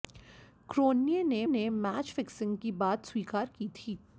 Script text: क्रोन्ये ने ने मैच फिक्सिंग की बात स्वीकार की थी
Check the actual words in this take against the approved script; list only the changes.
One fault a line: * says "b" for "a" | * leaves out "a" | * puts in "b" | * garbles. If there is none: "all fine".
all fine